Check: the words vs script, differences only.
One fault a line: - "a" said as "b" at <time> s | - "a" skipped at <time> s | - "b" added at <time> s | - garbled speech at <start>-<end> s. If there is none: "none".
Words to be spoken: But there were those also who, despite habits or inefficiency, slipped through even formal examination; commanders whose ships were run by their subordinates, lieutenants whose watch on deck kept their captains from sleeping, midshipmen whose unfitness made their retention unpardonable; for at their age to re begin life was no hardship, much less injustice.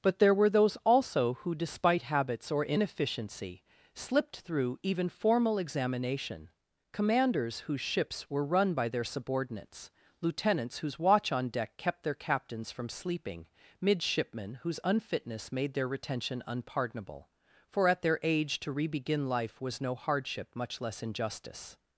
none